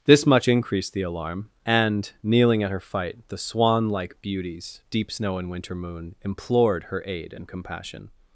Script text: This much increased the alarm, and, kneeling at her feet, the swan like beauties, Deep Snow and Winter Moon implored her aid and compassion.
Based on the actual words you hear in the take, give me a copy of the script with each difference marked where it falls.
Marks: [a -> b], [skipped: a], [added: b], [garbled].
This much increased the alarm, and, kneeling at her [feet, -> fight] the swan like beauties, Deep Snow and Winter Moon implored her aid and compassion.